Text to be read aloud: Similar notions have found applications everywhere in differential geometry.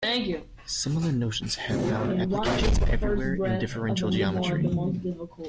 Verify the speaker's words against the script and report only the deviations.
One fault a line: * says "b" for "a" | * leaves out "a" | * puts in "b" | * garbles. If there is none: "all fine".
all fine